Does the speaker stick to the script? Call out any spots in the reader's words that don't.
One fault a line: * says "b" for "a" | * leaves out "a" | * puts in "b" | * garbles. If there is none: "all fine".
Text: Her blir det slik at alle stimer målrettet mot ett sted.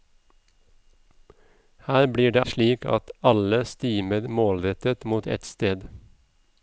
all fine